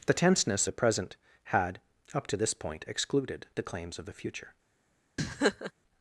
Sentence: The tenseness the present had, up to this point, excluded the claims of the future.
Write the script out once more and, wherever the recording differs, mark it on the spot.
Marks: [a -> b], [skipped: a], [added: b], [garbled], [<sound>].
The tenseness the present had, up to this point, excluded the claims of the future. [laugh]